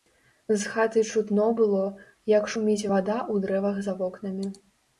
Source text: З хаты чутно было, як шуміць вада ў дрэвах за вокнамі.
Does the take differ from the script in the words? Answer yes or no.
no